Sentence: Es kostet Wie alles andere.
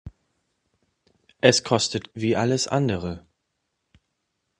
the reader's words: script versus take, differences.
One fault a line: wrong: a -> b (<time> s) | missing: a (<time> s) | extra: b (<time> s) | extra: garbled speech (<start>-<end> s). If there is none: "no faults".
no faults